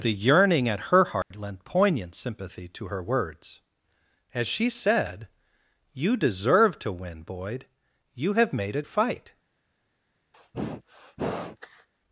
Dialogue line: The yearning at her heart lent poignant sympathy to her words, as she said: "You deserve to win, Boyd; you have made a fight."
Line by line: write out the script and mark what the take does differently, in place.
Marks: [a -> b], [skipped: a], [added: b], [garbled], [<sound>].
The yearning at her heart [dropout] lent poignant sympathy to her words, as she said: "You deserve to win, Boyd; you have made a fight." [sneeze]